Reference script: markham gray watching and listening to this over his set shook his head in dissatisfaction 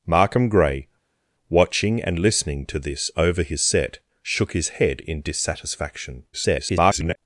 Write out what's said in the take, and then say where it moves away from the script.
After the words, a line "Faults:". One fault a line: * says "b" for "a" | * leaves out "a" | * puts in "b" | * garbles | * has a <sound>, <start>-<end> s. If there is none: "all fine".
markham gray watching and listening to this over his set shook his head in dissatisfaction [garbled]
Faults:
* garbles